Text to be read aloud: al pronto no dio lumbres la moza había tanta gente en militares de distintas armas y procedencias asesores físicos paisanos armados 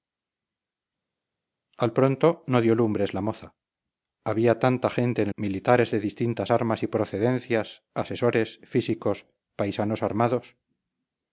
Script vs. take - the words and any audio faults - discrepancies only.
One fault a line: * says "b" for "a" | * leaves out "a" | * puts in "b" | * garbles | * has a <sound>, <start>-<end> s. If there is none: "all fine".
all fine